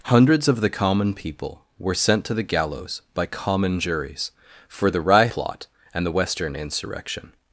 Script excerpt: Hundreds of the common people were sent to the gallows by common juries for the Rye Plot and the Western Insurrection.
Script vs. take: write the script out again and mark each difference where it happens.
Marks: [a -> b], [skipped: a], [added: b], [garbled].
Hundreds of the common people were sent to the gallows by common juries for the Rye Plot and the Western Insurrection.